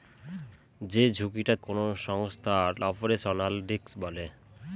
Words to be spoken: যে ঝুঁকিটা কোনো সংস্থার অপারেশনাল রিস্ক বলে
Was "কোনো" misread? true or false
false